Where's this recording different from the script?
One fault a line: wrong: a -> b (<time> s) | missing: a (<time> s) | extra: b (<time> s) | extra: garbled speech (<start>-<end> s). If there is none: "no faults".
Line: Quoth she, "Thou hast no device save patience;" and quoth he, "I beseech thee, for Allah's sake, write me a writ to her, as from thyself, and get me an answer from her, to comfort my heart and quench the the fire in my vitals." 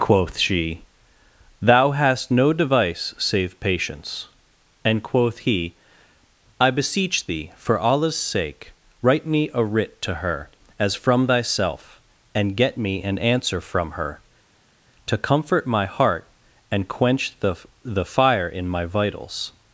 no faults